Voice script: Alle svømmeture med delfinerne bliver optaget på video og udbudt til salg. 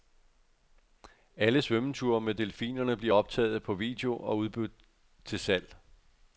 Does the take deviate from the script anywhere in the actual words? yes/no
no